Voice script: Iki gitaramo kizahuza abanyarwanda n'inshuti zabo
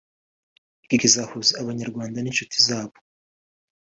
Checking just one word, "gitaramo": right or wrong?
wrong